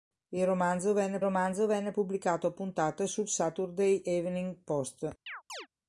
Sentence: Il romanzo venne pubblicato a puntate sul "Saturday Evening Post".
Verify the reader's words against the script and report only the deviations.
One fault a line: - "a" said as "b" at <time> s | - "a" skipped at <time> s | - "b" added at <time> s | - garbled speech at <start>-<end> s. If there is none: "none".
- "romanzo venne" added at 1.2 s